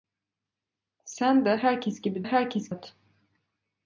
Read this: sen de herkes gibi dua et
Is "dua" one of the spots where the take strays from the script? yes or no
yes